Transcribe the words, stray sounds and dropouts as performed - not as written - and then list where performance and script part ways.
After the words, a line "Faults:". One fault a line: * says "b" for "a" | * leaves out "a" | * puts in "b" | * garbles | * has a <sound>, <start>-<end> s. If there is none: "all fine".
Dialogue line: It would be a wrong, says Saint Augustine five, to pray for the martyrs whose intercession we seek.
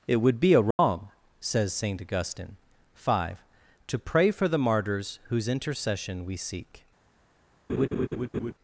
It would be a wrong, says Saint Augustine five, to pray for the martyrs whose intercession we seek.
Faults:
* has a dropout, 0.7-0.8 s
* has a laugh, 7.7-8.5 s